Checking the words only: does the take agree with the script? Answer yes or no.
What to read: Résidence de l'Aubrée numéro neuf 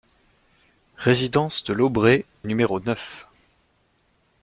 yes